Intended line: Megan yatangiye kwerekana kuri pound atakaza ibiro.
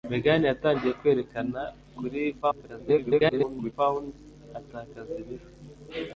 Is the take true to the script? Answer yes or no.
no